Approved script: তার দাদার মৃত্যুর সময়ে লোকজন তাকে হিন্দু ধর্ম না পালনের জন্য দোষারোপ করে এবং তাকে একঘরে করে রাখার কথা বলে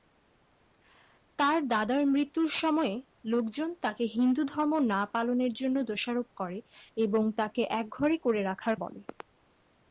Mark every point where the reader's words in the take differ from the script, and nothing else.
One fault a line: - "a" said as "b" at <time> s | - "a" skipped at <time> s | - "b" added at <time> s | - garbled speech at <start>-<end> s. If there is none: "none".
- "কথা" skipped at 8.8 s